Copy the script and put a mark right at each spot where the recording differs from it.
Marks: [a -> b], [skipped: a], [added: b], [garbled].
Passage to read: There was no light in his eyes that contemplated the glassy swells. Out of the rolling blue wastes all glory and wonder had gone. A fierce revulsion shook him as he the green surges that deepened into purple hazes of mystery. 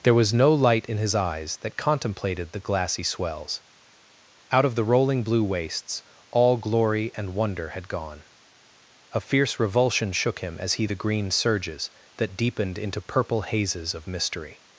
There was no light in his eyes that contemplated the glassy swells. Out of the rolling blue wastes all glory and wonder had gone. A fierce revulsion shook him as he the green surges that deepened into purple hazes of mystery.